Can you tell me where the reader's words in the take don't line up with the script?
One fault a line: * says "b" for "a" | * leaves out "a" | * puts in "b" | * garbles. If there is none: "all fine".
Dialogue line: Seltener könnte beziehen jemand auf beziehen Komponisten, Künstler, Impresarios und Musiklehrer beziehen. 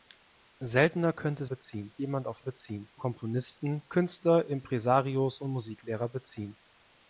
all fine